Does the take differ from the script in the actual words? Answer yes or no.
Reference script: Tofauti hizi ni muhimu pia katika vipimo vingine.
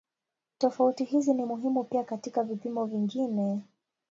no